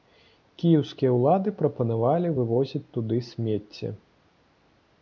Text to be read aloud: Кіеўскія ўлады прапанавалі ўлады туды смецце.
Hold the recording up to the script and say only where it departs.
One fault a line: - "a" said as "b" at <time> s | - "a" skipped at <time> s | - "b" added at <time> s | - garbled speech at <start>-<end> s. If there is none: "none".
- "ўлады" said as "вывозіць" at 2.4 s